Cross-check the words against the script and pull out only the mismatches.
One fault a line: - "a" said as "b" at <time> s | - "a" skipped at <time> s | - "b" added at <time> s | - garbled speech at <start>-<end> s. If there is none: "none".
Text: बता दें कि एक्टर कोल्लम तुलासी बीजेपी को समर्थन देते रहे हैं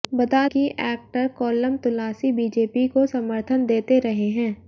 - "दें" skipped at 0.5 s